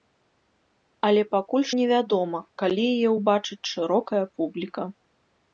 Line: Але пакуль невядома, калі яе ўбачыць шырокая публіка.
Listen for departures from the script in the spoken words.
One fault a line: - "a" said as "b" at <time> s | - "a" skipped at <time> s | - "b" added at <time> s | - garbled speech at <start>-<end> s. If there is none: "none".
none